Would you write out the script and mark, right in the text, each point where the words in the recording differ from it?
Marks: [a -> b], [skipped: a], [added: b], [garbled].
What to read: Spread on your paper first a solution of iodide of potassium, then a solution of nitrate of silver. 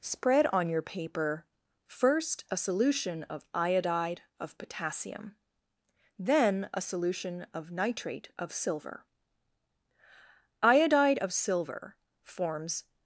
Spread on your paper first a solution of iodide of potassium, then a solution of nitrate of silver. [added: Iodide of silver forms]